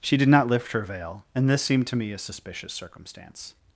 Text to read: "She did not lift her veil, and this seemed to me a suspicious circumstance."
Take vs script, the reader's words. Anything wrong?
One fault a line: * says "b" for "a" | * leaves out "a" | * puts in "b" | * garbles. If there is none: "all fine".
all fine